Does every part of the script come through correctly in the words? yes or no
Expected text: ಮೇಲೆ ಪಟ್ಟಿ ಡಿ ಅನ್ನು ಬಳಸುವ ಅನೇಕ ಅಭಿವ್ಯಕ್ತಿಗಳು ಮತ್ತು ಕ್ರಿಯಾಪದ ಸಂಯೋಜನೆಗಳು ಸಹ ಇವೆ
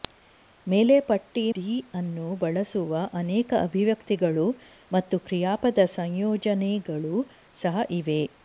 yes